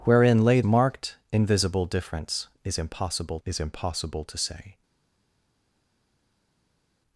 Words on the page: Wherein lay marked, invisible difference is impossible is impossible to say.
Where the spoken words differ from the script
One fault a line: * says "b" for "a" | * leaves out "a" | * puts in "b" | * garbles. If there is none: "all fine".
all fine